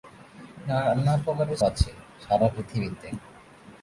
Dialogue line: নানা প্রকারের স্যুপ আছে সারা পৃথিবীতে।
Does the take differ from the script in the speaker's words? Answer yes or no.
yes